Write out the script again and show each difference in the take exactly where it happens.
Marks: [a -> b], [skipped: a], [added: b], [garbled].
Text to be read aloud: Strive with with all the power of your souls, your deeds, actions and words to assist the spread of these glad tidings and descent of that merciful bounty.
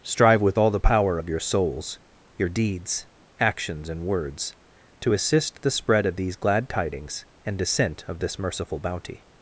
Strive with [skipped: with] all the power of your souls, your deeds, actions and words to assist the spread of these glad tidings and descent of [that -> this] merciful bounty.